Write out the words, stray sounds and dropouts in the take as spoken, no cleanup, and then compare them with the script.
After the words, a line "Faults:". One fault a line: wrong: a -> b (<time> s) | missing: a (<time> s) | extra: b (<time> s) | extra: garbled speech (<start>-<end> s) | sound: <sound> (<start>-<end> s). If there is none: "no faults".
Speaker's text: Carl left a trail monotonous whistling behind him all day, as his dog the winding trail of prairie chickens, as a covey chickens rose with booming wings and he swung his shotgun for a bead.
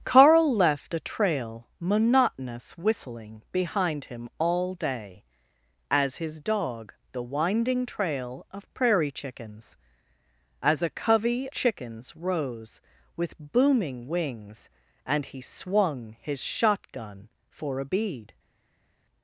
Carl left a trail monotonous whistling behind him all day, as his dog the winding trail of prairie chickens, as a covey chickens rose with booming wings and he swung his shotgun for a bead.
Faults:
no faults